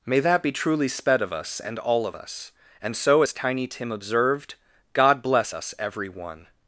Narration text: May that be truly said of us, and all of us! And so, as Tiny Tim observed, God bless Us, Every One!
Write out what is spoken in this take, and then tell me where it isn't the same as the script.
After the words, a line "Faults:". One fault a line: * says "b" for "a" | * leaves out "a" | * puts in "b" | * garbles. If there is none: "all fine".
May that be truly sped of us, and all of us! And so, as Tiny Tim observed, God bless Us, Every One!
Faults:
* says "sped" for "said"